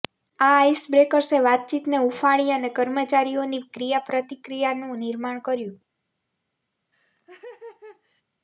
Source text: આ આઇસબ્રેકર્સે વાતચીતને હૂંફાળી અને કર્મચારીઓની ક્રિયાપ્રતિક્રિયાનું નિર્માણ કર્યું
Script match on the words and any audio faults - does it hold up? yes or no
no